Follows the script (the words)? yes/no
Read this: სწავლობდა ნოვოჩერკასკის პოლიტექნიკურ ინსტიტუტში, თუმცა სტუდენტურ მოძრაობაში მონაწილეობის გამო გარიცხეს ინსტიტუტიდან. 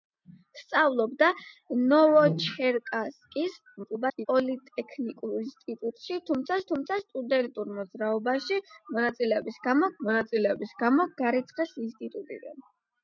no